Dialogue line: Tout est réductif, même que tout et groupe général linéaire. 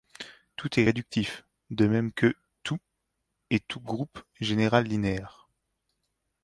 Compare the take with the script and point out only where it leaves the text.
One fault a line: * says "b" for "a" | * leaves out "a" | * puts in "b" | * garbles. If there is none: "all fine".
* puts in "de"
* puts in "tout"